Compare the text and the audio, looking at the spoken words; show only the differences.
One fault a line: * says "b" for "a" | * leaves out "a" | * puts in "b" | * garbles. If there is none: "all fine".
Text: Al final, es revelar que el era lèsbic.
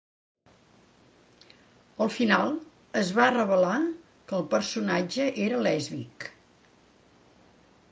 * puts in "va"
* puts in "personatge"